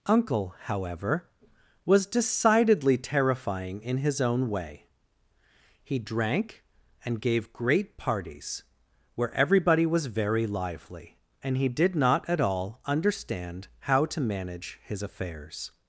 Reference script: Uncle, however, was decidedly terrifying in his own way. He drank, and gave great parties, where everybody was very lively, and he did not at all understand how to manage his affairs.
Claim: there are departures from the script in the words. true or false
false